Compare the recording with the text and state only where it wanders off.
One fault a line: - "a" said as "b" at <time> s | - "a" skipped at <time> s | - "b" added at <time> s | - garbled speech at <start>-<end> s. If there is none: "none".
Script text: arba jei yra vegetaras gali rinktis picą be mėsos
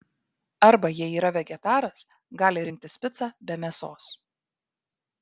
none